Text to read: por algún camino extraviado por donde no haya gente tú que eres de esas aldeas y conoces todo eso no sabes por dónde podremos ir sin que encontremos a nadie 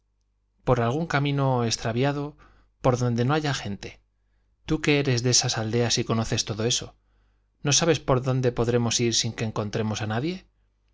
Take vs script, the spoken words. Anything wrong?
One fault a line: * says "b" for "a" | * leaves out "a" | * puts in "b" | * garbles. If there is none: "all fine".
all fine